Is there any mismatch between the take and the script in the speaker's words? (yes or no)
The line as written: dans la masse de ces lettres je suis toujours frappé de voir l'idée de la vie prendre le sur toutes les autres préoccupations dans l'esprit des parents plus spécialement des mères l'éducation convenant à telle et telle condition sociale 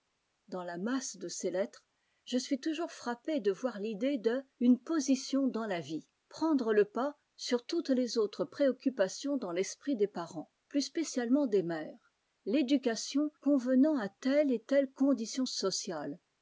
yes